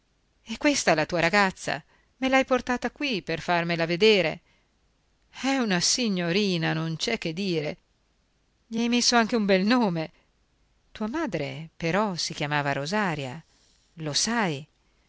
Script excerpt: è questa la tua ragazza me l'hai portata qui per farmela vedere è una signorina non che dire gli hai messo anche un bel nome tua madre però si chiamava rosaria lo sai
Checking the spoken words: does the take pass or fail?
fail